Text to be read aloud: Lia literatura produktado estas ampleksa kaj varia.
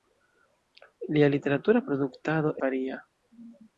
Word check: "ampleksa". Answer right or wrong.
wrong